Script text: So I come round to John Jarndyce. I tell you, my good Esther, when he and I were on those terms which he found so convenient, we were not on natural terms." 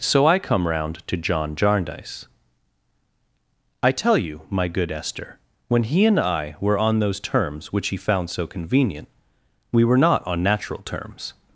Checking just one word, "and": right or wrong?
right